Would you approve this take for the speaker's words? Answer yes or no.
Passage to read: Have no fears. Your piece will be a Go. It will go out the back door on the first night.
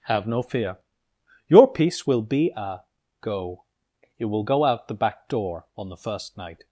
no